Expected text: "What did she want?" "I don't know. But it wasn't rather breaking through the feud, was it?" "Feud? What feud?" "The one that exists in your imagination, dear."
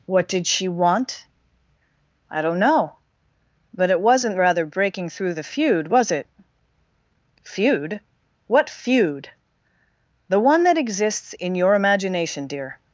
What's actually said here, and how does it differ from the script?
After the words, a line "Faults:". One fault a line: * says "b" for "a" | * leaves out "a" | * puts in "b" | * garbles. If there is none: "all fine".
"What did she want?" "I don't know. But it wasn't rather breaking through the feud, was it?" "Feud? What feud?" "The one that exists in your imagination, dear."
Faults:
all fine